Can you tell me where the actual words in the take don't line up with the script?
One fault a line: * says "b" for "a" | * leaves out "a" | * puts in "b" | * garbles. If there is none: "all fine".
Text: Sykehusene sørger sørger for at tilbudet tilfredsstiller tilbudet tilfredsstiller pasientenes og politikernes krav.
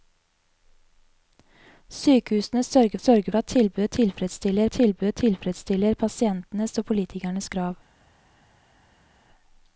all fine